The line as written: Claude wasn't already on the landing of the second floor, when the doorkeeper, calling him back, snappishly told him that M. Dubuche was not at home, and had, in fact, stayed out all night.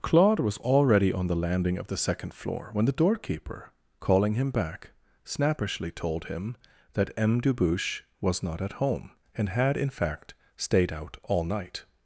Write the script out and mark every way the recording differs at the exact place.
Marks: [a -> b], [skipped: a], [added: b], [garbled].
Claude [wasn't -> was] already on the landing of the second floor, when the doorkeeper, calling him back, snappishly told him that M. Dubuche was not at home, and had, in fact, stayed out all night.